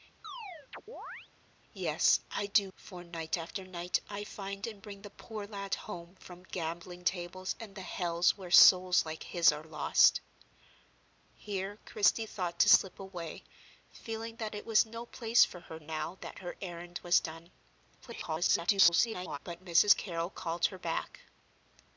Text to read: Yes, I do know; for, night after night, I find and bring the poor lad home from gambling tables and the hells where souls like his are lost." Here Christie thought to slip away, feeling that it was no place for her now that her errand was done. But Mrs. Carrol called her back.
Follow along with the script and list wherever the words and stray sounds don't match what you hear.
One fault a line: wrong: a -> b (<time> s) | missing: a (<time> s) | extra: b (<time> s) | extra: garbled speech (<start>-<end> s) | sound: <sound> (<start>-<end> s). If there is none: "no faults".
sound: chirp (0.2-1.3 s)
missing: know (2.7 s)
extra: garbled speech (18.0-19.4 s)